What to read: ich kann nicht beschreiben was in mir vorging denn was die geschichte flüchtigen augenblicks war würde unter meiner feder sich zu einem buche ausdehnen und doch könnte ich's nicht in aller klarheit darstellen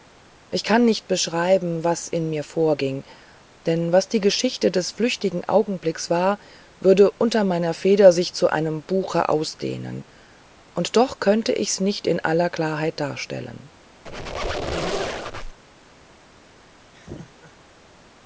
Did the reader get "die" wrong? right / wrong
right